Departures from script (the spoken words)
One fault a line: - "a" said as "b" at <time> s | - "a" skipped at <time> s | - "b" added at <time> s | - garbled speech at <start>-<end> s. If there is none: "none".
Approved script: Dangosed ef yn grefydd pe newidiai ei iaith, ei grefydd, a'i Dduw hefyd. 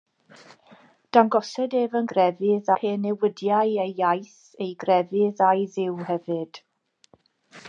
none